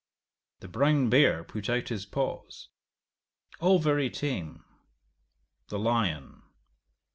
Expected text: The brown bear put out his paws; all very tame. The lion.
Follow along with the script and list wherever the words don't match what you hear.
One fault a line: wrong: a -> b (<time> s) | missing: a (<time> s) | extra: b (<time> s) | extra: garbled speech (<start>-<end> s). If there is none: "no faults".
no faults